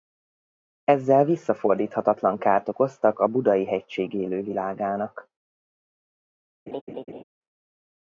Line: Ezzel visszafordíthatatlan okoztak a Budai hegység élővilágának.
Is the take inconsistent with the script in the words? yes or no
yes